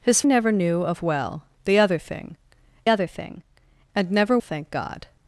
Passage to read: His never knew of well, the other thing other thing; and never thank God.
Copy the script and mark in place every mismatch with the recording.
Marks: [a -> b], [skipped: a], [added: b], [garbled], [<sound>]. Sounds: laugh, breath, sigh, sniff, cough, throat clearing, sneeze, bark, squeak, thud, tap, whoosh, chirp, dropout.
His never knew of well, the other thing other thing; and never thank God.